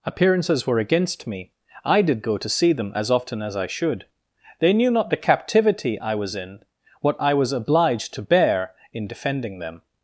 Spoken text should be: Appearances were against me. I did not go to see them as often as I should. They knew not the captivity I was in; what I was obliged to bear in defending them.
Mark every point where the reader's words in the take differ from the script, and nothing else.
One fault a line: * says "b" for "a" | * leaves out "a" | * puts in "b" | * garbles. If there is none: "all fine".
* leaves out "not"